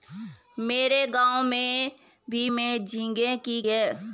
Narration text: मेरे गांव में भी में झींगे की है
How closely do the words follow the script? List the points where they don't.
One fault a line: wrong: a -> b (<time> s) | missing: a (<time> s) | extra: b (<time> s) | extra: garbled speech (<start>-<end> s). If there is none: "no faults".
no faults